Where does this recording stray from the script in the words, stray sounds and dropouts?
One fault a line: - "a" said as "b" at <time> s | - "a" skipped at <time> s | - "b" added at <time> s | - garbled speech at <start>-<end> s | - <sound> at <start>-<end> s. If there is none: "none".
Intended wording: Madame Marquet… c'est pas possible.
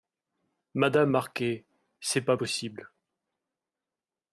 none